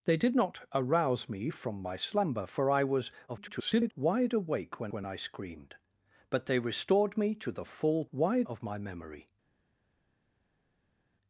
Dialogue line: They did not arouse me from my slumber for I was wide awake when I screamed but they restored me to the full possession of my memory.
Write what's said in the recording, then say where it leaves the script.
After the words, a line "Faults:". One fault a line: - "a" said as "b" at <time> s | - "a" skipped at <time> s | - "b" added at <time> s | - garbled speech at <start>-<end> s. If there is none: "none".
They did not arouse me from my slumber for I was [garbled] wide awake when when I screamed but they restored me to the full wide of my memory.
Faults:
- garbled speech at 3.3-3.9 s
- "when" added at 4.9 s
- "possession" said as "wide" at 8.1 s